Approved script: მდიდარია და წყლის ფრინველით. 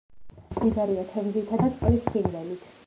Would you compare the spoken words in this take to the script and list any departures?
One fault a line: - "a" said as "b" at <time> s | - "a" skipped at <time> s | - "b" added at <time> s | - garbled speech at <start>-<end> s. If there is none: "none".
- "თევზითა" added at 1.1 s